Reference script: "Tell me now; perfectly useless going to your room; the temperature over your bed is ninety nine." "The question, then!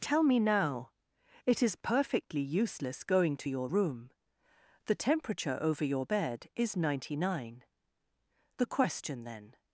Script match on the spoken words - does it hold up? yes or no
no